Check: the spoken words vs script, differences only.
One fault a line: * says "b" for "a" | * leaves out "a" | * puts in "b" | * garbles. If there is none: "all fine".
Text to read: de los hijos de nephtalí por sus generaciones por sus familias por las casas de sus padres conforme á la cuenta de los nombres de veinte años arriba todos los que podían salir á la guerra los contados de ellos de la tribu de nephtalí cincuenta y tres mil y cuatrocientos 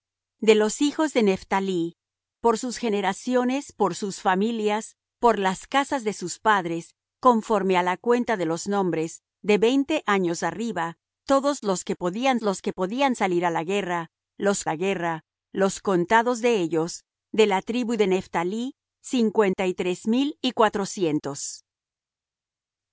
* puts in "los que podían"
* puts in "la guerra los"